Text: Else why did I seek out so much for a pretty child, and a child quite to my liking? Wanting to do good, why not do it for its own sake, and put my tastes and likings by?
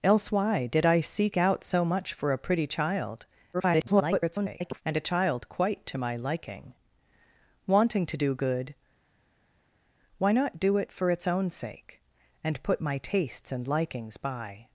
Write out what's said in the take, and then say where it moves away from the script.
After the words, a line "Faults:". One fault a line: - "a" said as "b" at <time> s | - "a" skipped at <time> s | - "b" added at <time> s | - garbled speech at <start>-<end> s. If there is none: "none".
Else why did I seek out so much for a pretty child, [garbled] and a child quite to my liking? Wanting to do good, why not do it for its own sake, and put my tastes and likings by?
Faults:
- garbled speech at 3.5-4.8 s